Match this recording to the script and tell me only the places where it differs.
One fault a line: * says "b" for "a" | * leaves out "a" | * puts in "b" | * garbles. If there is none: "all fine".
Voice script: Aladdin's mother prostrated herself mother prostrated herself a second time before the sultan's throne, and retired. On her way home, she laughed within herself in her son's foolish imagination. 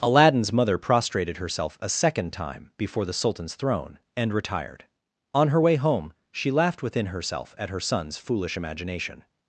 * leaves out "mother prostrated herself"
* says "at" for "in"